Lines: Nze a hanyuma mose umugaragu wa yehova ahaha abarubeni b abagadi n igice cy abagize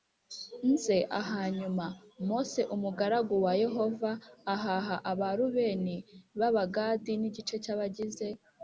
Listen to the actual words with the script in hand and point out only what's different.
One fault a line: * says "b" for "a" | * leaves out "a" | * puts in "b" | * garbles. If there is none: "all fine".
all fine